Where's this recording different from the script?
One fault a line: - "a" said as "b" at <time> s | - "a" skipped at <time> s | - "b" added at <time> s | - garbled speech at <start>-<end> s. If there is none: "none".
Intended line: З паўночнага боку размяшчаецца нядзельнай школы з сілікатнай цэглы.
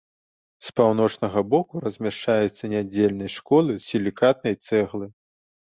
none